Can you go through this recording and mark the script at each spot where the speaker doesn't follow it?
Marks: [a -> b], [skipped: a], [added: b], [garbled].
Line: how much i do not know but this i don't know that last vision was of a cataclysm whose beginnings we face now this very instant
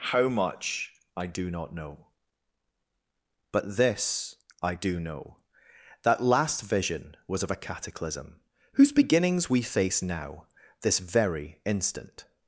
how much i do not know but this i [don't -> do] know that last vision was of a cataclysm whose beginnings we face now this very instant